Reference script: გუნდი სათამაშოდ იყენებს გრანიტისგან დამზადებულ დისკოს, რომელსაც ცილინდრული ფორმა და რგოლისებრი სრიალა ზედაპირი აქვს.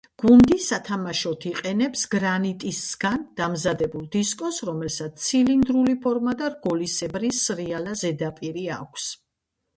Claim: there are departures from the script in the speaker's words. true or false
false